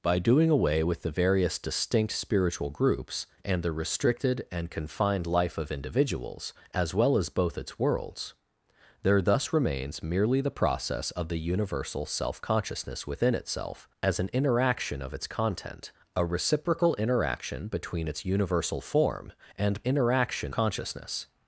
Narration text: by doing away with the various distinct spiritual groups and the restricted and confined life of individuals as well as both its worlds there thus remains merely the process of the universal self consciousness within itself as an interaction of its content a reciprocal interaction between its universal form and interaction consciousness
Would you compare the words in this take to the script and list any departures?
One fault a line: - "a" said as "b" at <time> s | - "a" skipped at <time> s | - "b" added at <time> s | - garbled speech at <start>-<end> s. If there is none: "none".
none